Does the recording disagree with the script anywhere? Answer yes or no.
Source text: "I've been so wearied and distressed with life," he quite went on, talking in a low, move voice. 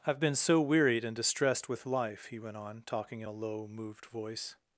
yes